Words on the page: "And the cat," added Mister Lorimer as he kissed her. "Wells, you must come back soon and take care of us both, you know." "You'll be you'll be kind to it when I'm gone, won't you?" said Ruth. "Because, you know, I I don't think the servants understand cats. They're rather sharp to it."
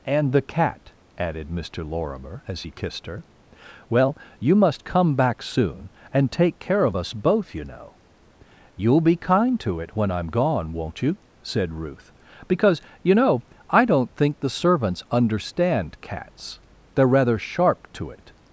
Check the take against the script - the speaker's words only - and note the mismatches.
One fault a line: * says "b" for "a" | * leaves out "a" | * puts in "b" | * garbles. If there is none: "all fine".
* says "Well" for "Wells"
* leaves out "you'll be"
* leaves out "I"